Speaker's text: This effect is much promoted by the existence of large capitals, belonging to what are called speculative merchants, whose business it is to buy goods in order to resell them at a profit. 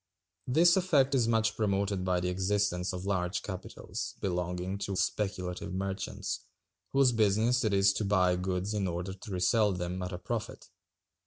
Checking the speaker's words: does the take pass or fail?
fail